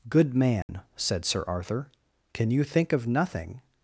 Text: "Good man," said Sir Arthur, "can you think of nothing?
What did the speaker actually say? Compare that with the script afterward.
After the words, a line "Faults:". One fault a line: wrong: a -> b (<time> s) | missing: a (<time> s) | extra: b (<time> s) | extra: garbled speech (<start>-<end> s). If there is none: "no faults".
"Good man," said Sir Arthur, "can you think of nothing?
Faults:
no faults